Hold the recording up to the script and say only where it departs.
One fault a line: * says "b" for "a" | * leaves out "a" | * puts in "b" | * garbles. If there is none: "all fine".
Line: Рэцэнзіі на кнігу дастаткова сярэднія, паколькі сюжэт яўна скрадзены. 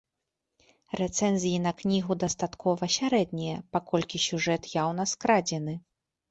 all fine